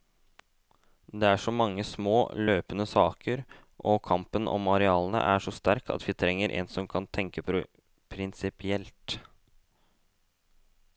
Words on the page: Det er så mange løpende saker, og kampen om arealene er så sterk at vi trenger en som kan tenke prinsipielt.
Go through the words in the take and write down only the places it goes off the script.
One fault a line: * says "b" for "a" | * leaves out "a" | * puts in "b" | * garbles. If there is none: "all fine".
* puts in "små"